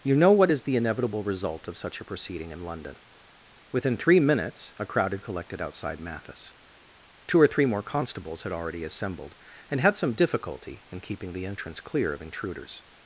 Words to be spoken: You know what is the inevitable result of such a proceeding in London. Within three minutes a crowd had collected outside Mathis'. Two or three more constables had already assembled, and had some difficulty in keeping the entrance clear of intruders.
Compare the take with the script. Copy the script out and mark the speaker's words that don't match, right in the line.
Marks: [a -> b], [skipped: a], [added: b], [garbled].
You know what is the inevitable result of such a proceeding in London. Within three minutes a crowd had collected outside Mathis'. Two or three more constables had already assembled, and had some difficulty in keeping the entrance clear of intruders.